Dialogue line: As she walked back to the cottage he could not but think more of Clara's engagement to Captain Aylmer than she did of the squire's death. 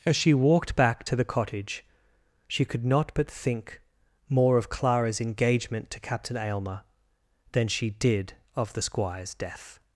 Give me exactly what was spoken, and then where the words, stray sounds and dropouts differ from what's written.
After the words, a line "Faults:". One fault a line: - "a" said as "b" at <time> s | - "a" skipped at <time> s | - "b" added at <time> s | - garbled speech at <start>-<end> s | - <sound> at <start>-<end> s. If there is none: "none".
As she walked back to the cottage she could not but think more of Clara's engagement to Captain Aylmer than she did of the squire's death.
Faults:
- "he" said as "she" at 2.5 s